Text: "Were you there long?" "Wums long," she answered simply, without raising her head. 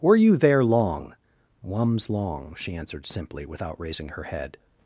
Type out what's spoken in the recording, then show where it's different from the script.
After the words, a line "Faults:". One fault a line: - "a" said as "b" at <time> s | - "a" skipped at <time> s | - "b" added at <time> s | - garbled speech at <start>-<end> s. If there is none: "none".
"Were you there long?" "Wums long," she answered simply, without raising her head.
Faults:
none